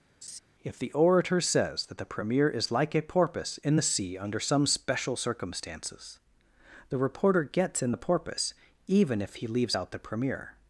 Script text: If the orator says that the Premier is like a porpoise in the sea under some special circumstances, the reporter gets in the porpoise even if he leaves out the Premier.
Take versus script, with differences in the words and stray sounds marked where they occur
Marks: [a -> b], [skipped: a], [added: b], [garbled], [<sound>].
[laugh] If the orator says that the Premier is like a porpoise in the sea under some special circumstances, the reporter gets in the porpoise even if he leaves out the Premier.